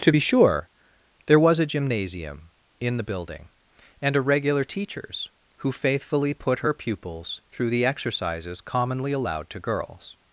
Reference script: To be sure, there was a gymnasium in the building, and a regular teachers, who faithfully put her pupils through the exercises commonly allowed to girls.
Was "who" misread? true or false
false